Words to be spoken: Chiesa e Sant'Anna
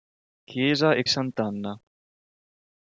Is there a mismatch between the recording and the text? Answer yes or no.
no